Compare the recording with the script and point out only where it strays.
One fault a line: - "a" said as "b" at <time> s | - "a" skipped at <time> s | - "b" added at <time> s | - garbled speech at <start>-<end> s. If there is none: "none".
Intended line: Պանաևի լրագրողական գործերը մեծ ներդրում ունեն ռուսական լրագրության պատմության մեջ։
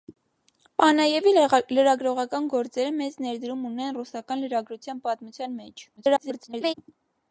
- garbled speech at 6.0-6.7 s